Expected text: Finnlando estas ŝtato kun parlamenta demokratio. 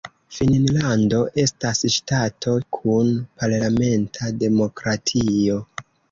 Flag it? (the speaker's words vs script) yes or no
no